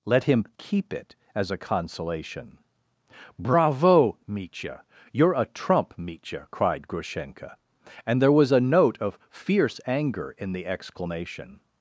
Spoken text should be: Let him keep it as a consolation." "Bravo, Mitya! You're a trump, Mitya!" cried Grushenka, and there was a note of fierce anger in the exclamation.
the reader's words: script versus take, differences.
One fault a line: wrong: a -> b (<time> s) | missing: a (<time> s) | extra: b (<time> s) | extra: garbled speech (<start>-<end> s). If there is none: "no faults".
no faults